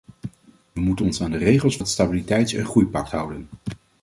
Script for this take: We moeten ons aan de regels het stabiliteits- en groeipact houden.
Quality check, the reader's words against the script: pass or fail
pass